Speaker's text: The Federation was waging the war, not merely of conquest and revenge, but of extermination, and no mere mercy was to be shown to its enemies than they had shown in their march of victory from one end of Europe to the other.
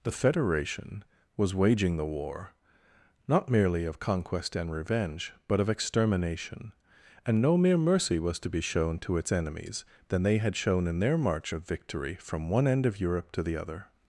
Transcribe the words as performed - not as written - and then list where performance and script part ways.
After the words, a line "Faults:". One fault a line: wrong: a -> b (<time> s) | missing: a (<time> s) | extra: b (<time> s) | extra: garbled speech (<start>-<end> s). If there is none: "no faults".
The Federation was waging the war, not merely of conquest and revenge, but of extermination, and no mere mercy was to be shown to its enemies than they had shown in their march of victory from one end of Europe to the other.
Faults:
no faults